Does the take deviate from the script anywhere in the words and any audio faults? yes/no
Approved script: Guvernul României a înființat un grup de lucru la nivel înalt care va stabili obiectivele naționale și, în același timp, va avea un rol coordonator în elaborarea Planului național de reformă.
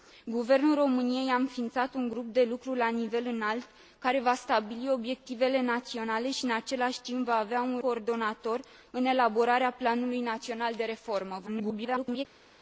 yes